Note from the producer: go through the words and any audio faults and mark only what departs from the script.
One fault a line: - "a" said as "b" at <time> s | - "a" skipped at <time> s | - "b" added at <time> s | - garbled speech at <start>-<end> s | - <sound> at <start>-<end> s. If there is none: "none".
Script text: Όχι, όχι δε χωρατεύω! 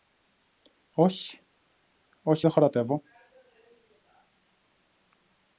none